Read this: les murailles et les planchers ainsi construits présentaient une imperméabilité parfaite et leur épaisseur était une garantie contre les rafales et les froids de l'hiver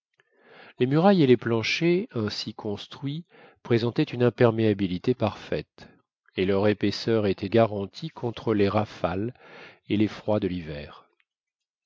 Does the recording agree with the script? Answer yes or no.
no